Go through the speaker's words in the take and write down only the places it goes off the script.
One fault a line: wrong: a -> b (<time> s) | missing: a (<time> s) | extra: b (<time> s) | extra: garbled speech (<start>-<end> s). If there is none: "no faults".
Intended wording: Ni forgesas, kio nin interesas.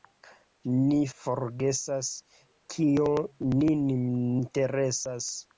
no faults